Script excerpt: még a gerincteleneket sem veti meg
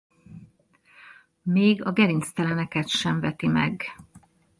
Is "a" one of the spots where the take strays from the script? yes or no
no